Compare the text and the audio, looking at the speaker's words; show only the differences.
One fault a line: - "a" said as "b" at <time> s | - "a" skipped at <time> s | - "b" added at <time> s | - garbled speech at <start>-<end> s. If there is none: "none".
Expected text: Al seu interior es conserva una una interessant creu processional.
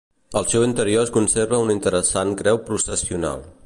- "una" skipped at 1.8 s